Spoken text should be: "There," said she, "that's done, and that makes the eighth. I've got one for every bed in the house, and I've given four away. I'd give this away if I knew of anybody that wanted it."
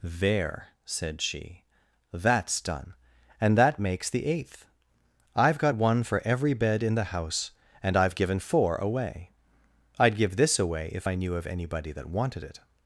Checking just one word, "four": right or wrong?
right